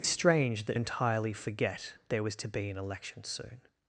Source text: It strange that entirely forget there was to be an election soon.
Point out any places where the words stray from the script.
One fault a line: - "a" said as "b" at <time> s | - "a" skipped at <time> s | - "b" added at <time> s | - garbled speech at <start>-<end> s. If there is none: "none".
none